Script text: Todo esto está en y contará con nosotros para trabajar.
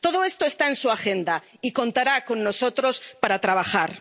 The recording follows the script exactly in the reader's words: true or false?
false